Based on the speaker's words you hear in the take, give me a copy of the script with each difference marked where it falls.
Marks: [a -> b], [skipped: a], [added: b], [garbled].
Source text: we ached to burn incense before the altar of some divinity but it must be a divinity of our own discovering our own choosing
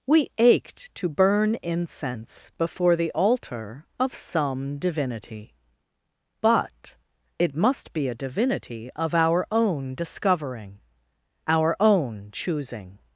we ached to burn incense before the altar of some divinity but it must be a divinity of our own discovering our own choosing